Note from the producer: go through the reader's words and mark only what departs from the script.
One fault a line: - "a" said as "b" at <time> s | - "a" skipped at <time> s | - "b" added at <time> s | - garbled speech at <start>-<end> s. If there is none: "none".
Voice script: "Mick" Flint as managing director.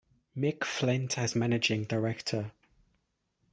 none